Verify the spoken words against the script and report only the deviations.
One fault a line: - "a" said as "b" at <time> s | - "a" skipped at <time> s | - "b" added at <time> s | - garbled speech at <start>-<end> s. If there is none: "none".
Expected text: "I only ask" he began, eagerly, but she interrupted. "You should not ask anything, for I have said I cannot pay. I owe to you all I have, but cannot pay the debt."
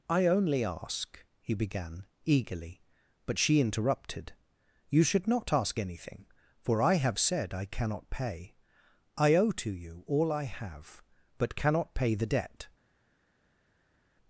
none